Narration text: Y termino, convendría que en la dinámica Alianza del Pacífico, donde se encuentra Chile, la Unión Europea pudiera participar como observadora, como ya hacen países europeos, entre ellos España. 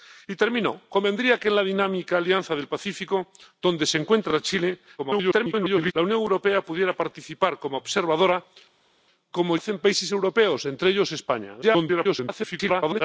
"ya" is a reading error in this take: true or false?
true